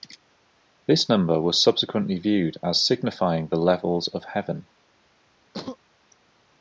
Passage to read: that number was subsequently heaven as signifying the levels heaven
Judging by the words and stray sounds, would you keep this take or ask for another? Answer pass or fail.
fail